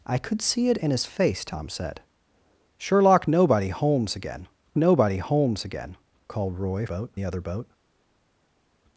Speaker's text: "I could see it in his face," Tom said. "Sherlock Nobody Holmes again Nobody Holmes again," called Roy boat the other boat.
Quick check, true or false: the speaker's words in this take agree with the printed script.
true